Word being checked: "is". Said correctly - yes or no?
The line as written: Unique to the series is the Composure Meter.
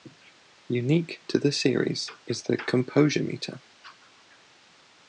yes